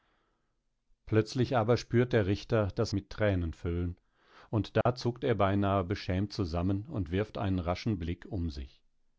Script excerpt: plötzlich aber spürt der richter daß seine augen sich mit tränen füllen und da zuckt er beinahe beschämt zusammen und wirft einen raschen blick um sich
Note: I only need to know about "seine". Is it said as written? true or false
false